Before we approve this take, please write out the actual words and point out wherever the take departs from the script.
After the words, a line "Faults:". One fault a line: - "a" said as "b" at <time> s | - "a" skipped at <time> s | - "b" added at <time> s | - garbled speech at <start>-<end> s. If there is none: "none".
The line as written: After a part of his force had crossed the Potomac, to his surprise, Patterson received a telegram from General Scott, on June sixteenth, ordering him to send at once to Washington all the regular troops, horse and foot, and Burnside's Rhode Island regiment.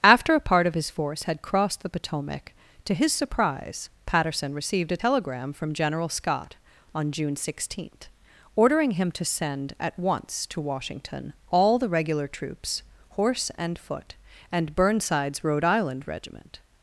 After a part of his force had crossed the Potomac, to his surprise, Patterson received a telegram from General Scott, on June sixteenth, ordering him to send at once to Washington all the regular troops, horse and foot, and Burnside's Rhode Island regiment.
Faults:
none